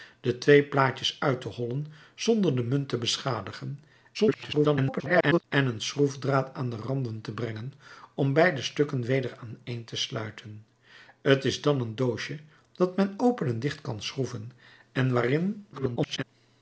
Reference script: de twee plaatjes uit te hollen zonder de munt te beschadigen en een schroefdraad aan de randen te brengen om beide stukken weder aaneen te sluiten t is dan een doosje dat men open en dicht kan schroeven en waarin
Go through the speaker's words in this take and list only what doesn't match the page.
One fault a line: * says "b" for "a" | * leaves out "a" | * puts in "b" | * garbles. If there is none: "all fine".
* garbles
* garbles